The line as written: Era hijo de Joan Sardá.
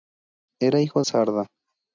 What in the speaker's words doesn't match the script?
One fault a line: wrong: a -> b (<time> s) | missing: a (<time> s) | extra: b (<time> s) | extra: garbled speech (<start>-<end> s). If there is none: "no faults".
missing: de Joan (1.0 s)